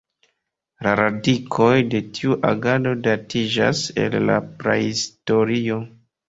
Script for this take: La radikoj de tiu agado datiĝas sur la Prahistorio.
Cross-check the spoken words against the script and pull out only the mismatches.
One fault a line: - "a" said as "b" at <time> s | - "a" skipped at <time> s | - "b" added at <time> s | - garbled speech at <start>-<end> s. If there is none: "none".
- "sur" said as "el" at 4.0 s